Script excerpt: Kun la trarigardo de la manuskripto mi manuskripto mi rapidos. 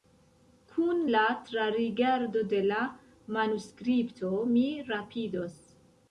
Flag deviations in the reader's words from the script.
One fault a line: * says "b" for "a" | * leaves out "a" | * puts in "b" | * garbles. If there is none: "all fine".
* leaves out "manuskripto mi"